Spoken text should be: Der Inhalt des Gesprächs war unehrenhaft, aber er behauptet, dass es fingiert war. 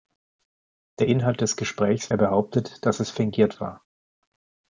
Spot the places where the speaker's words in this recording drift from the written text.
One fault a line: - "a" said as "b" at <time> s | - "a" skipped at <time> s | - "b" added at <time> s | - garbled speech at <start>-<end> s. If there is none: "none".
- "war unehrenhaft aber" skipped at 2.1 s